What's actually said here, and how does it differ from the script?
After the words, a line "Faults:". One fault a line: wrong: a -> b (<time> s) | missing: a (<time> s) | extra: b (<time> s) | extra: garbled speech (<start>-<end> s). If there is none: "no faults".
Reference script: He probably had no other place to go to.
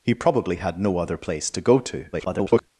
He probably had no other place to go to. [garbled]
Faults:
extra: garbled speech (2.1-2.6 s)